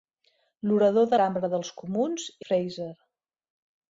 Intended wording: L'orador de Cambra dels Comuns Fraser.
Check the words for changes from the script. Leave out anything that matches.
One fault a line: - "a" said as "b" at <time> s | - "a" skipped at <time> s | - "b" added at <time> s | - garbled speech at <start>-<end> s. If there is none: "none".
none